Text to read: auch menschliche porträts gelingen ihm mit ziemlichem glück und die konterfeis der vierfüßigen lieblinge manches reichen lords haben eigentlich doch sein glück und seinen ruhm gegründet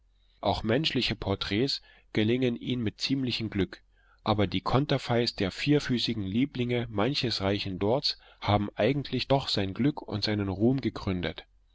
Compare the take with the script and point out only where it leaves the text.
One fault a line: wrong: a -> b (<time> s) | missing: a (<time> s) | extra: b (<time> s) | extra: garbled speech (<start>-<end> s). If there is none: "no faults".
wrong: und -> aber (4.2 s)